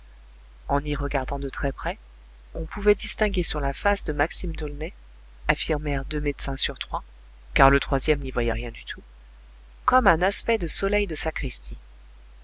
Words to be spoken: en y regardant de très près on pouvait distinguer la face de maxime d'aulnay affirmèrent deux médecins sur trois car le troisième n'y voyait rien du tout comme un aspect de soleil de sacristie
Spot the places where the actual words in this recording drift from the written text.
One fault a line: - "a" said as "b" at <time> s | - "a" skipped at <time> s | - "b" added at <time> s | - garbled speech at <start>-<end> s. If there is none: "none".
- "sur" added at 3.4 s